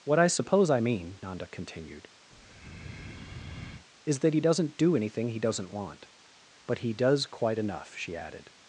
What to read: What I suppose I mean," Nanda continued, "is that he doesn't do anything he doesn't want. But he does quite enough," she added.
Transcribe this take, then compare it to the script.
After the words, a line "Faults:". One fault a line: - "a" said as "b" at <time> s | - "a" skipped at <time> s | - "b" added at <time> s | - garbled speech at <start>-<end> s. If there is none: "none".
What I suppose I mean," Nanda continued, "is that he doesn't do anything he doesn't want. But he does quite enough," she added.
Faults:
none